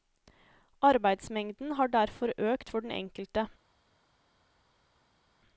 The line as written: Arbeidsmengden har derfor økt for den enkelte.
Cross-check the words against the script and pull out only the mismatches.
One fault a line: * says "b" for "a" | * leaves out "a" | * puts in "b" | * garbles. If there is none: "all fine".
all fine